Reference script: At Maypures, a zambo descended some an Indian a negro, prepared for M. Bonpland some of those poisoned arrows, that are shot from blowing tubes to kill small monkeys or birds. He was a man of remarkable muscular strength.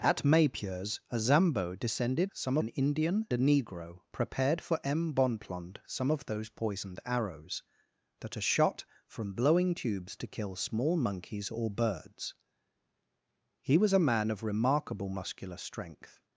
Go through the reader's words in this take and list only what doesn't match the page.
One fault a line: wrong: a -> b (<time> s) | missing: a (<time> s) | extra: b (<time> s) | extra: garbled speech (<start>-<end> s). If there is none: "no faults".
no faults